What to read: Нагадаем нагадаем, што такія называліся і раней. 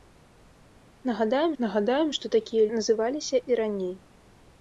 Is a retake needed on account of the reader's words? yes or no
no